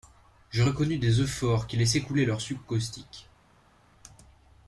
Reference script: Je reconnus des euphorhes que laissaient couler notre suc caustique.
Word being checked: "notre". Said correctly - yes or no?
no